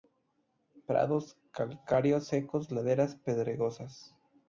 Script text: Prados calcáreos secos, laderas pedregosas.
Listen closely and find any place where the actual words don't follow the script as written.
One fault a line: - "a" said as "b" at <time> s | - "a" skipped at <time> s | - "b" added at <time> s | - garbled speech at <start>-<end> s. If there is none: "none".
none